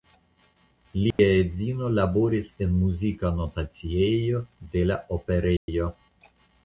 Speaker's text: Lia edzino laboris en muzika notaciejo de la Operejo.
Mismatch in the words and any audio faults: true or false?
true